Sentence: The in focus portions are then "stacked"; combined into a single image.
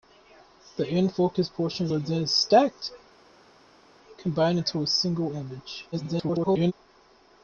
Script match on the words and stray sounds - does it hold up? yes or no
no